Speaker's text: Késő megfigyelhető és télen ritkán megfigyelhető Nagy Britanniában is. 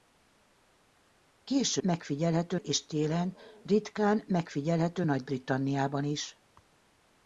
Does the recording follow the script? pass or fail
pass